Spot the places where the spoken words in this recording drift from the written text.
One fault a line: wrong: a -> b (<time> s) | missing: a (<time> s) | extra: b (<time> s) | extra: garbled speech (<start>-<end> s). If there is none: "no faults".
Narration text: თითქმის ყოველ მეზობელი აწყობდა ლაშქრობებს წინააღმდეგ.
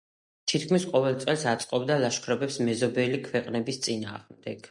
wrong: მეზობელი -> წელს (1.2 s)
extra: მეზობელი ქვეყნების (2.7 s)